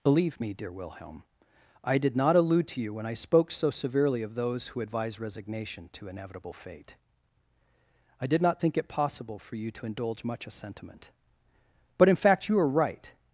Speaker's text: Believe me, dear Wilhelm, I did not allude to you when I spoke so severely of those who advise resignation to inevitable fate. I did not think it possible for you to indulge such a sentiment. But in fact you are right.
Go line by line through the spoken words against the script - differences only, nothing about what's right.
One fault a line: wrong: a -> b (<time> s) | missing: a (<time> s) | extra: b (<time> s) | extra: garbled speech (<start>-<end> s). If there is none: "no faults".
wrong: such -> much (10.2 s)